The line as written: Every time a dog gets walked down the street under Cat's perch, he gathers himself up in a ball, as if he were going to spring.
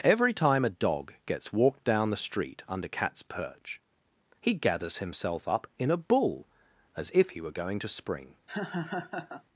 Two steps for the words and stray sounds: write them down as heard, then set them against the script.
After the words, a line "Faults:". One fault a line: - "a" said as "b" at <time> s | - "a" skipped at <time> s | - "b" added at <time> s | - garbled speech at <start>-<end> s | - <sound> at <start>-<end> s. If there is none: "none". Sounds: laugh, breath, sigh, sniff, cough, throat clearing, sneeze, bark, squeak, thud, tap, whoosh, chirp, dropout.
Every time a dog gets walked down the street under Cat's perch, he gathers himself up in a bull, as if he were going to spring.
Faults:
- "ball" said as "bull" at 6.0 s
- laugh at 8.5-9.4 s